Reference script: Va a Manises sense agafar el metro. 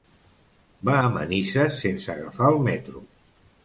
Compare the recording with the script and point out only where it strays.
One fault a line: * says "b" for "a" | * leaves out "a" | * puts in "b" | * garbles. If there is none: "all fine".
all fine